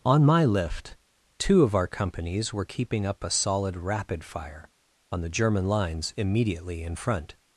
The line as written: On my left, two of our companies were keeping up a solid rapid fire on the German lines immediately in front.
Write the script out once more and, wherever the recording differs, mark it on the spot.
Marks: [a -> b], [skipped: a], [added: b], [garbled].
On my [left, -> lift] two of our companies were keeping up a solid rapid fire on the German lines immediately in front.